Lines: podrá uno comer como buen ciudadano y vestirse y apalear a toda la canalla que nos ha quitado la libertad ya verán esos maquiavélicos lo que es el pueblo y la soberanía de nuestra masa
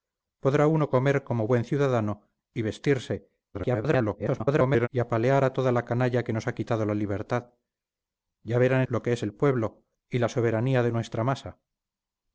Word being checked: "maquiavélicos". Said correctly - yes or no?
no